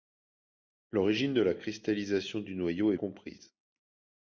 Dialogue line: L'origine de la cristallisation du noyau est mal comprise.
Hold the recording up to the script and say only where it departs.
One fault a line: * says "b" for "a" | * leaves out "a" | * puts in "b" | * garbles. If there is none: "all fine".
* leaves out "mal"